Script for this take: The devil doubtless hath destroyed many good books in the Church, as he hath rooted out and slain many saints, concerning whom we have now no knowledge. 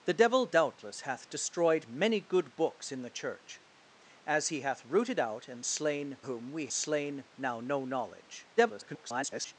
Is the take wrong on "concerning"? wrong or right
wrong